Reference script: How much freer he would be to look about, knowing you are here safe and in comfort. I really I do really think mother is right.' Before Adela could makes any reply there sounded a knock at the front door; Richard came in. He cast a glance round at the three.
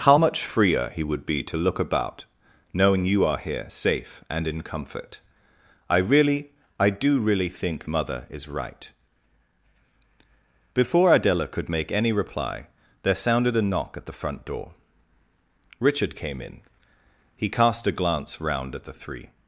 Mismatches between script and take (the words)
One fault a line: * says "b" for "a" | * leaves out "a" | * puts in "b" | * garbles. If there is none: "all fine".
* says "make" for "makes"